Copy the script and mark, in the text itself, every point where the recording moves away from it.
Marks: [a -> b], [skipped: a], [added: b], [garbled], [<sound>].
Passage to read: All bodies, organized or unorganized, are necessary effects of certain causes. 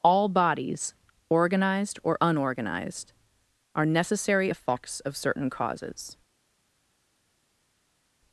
All bodies, organized or unorganized, are necessary effects of certain causes.